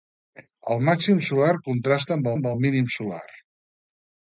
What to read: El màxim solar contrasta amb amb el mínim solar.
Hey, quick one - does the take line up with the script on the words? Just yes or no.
yes